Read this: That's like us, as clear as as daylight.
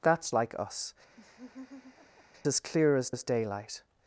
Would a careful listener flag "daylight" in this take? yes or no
no